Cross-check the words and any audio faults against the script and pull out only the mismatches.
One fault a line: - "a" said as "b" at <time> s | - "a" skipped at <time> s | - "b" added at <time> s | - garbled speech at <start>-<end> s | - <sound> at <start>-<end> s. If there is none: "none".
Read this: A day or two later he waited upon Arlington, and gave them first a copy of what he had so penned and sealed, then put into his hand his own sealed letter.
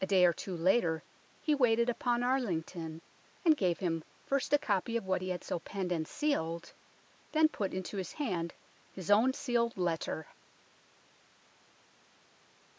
- "them" said as "him" at 3.8 s